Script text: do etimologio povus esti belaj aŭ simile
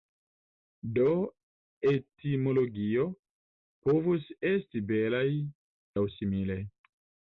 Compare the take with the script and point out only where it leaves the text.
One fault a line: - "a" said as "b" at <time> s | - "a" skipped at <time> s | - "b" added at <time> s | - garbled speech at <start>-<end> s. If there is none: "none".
none